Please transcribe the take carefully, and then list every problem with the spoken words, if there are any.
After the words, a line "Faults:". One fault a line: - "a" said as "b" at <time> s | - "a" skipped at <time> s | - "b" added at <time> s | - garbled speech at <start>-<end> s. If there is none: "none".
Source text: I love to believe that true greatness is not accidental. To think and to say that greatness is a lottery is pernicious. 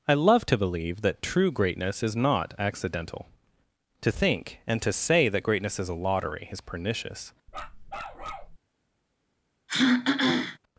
I love to believe that true greatness is not accidental. To think and to say that greatness is a lottery is pernicious.
Faults:
none